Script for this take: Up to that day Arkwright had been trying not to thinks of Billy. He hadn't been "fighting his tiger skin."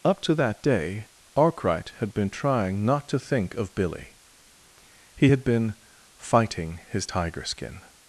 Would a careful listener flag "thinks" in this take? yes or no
yes